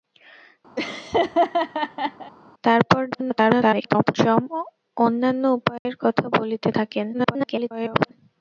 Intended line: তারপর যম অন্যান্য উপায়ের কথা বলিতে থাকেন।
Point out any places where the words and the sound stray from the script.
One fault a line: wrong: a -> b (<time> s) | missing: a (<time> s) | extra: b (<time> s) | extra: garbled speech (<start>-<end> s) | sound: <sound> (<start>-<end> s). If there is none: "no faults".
sound: laugh (0.8-2.3 s)
extra: garbled speech (3.1-4.1 s)
sound: dropout (5.8-5.9 s)
extra: garbled speech (7.1-8.1 s)